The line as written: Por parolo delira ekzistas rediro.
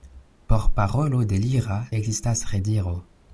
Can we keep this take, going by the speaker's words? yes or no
yes